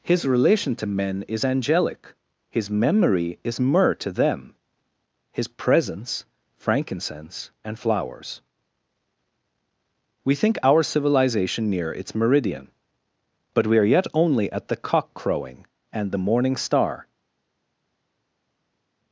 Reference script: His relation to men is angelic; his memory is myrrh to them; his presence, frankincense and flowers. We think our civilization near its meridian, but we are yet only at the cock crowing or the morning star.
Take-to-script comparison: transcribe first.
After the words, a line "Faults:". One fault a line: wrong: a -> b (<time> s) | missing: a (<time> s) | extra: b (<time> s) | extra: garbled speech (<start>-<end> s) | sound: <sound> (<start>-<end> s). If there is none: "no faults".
His relation to men is angelic; his memory is myrrh to them; his presence, frankincense and flowers. We think our civilization near its meridian, but we are yet only at the cock crowing and the morning star.
Faults:
wrong: or -> and (15.9 s)